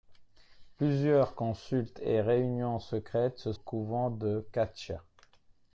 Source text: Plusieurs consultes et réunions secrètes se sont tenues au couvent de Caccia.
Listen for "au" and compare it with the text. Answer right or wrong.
wrong